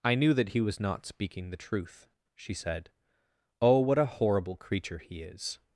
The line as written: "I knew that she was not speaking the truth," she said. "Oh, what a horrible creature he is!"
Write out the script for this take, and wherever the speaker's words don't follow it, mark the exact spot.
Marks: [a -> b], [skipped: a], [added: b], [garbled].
"I knew that [she -> he] was not speaking the truth," she said. "Oh, what a horrible creature he is!"